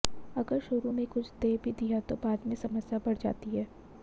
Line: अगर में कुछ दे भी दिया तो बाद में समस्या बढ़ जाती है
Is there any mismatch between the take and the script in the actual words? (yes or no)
yes